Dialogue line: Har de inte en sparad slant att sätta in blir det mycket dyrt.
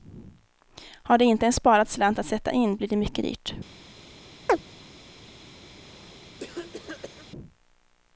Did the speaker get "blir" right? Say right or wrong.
right